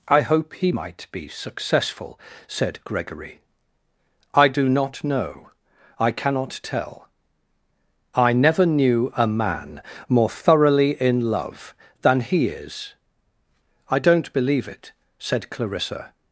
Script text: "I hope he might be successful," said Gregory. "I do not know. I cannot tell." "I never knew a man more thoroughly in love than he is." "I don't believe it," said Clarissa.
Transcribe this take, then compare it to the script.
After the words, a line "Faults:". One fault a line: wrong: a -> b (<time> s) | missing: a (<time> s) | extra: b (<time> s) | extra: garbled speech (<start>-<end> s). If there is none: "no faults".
"I hope he might be successful," said Gregory. "I do not know. I cannot tell." "I never knew a man more thoroughly in love than he is." "I don't believe it," said Clarissa.
Faults:
no faults